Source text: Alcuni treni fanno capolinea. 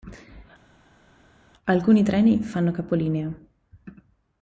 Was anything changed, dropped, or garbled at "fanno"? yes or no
no